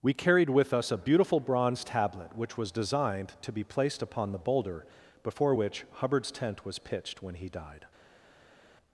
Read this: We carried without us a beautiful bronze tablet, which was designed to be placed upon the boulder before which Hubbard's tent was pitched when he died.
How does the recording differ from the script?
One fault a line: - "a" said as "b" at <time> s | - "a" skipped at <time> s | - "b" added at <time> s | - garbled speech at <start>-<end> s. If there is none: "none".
- "without" said as "with" at 0.5 s